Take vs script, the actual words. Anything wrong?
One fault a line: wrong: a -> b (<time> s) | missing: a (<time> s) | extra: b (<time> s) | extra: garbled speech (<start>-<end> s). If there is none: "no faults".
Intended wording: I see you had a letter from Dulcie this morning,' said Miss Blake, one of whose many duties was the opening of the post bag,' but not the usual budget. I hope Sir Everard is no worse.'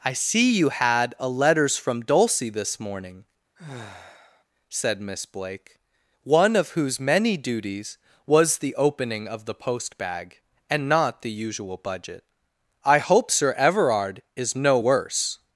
wrong: letter -> letters (1.3 s)
wrong: but -> and (10.7 s)